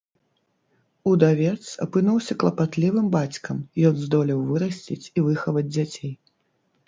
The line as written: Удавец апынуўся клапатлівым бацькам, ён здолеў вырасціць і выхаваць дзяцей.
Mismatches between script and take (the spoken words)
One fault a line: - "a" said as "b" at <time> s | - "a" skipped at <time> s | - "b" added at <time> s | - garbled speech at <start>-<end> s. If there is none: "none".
none